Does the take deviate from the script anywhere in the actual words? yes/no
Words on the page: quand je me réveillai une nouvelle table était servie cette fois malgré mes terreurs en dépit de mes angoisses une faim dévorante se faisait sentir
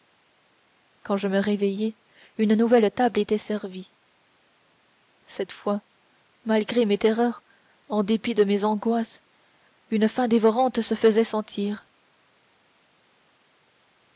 no